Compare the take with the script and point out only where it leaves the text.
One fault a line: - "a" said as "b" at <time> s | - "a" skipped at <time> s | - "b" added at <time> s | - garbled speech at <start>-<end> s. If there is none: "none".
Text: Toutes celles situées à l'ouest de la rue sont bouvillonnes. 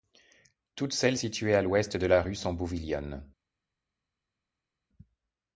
none